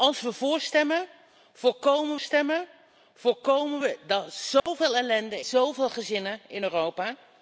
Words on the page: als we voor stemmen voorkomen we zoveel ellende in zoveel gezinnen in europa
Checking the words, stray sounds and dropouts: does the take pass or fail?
fail